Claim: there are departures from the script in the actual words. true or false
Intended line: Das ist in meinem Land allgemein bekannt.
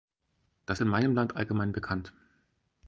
true